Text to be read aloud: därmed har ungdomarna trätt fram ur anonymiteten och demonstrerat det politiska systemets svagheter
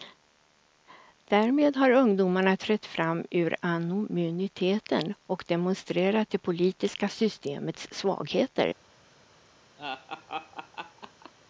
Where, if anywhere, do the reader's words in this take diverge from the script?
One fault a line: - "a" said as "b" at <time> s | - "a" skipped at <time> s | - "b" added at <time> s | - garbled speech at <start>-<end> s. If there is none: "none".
none